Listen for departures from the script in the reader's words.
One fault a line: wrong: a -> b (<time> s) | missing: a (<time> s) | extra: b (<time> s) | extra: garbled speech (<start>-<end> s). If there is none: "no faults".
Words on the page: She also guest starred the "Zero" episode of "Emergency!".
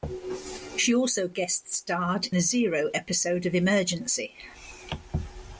no faults